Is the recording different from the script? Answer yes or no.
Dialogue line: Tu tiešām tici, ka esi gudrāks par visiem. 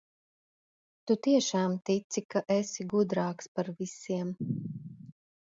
no